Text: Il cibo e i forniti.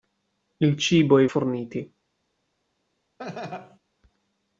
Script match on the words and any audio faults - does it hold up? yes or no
no